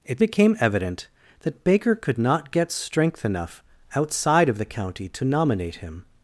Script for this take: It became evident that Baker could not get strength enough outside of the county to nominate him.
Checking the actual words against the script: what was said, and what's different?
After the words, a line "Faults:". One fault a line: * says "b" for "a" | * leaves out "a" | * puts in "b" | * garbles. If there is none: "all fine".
It became evident that Baker could not get strength enough outside of the county to nominate him.
Faults:
all fine